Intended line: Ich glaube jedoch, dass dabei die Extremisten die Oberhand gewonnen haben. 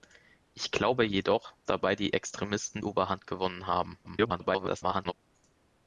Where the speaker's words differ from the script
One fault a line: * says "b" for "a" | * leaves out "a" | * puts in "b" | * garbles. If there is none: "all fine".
* leaves out "dass"
* leaves out "die"
* garbles